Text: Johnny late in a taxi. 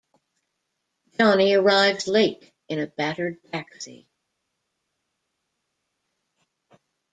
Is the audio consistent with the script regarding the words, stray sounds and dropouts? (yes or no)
no